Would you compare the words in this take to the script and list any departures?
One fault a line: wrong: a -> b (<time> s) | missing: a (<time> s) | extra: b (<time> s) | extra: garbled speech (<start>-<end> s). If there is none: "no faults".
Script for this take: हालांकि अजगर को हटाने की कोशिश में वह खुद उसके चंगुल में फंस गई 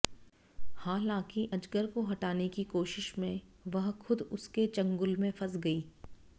no faults